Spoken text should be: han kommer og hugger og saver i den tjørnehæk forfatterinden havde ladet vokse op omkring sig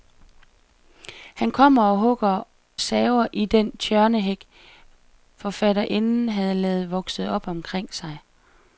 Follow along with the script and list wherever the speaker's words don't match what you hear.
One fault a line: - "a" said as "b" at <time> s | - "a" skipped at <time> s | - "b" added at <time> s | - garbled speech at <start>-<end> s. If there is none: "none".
- "og" skipped at 2.4 s